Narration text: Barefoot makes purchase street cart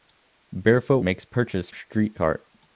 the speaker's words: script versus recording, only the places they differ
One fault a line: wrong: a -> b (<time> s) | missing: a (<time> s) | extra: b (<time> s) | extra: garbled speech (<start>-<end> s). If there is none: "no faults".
no faults